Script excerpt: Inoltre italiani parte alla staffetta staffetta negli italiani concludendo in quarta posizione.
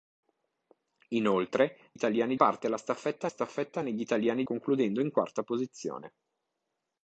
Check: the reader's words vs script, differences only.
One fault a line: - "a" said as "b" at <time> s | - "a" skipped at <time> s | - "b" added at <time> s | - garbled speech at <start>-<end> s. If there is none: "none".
none